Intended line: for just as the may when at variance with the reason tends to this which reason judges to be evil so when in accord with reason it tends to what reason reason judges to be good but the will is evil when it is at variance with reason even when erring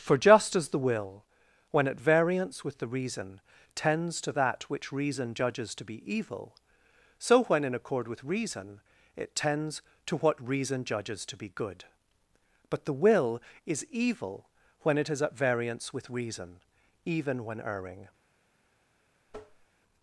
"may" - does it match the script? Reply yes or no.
no